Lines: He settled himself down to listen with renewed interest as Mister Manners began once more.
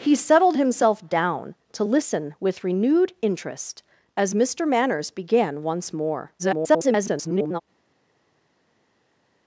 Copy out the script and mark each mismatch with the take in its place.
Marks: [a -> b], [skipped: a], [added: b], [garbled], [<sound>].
He settled himself down to listen with renewed interest as Mister Manners began once more. [garbled]